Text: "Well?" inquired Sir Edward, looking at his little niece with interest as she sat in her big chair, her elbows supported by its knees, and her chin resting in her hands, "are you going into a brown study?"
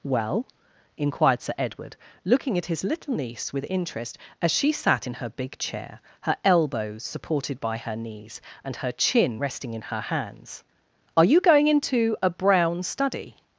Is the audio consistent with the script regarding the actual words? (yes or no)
no